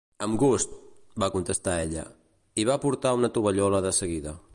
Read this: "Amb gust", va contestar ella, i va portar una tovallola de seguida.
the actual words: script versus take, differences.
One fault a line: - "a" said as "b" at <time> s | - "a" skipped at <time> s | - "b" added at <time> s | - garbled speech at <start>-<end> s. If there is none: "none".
none